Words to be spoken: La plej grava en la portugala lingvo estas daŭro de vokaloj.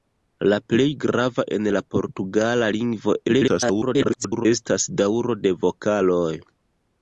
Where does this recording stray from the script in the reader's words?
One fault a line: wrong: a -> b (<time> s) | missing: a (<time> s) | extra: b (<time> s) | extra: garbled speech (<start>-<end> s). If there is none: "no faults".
extra: garbled speech (3.3-4.5 s)